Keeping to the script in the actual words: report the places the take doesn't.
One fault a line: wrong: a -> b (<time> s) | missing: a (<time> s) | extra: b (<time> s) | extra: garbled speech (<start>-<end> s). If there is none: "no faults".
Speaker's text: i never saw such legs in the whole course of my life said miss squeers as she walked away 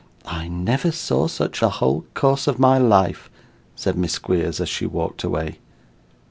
missing: legs in (1.6 s)